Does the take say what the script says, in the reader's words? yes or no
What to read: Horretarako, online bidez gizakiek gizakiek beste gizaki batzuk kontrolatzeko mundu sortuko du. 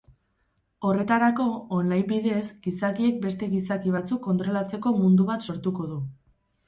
no